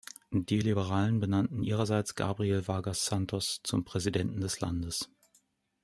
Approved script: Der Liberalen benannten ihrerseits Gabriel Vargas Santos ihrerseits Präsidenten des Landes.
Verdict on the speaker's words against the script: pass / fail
fail